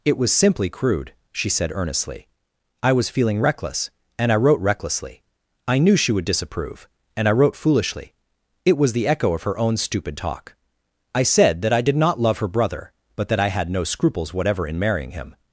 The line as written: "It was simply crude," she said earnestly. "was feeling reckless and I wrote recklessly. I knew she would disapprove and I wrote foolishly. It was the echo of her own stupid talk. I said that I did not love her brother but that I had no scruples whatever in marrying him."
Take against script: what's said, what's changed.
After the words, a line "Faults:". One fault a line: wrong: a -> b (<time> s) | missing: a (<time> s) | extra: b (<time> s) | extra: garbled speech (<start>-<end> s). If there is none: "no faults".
"It was simply crude," she said earnestly. "I was feeling reckless and I wrote recklessly. I knew she would disapprove and I wrote foolishly. It was the echo of her own stupid talk. I said that I did not love her brother but that I had no scruples whatever in marrying him."
Faults:
extra: I (2.8 s)